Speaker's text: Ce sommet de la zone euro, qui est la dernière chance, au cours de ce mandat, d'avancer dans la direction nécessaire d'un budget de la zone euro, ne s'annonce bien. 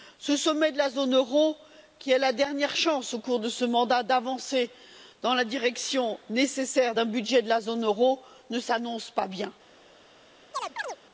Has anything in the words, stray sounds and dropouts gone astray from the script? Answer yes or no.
yes